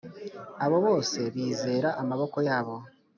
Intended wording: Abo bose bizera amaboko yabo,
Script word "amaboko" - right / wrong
right